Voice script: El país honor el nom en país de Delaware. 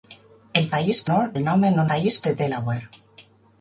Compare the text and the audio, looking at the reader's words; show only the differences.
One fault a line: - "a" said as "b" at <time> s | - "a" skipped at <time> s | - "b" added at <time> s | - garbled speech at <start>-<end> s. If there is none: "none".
none